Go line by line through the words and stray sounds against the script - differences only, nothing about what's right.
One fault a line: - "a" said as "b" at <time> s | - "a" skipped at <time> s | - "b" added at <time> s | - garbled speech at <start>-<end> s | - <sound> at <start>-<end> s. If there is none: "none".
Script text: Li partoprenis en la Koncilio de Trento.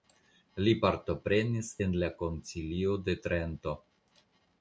none